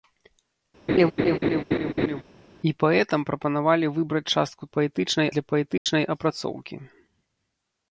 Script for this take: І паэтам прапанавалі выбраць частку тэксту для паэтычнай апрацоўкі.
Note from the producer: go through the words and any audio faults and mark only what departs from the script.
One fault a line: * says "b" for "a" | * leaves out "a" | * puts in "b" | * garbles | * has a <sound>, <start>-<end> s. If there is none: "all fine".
* has a laugh, 0.9-2.2 s
* says "паэтычнай" for "тэксту"
* has a dropout, 5.8-5.9 s